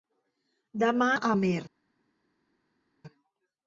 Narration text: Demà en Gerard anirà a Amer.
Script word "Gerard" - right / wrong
wrong